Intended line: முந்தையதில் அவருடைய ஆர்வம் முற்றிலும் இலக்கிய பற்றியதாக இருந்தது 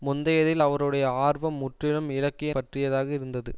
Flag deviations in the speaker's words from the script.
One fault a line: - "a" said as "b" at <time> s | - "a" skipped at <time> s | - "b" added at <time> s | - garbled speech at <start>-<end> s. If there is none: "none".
none